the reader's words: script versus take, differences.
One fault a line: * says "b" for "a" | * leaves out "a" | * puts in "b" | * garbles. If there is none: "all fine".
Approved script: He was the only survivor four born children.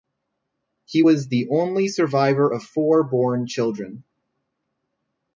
* puts in "of"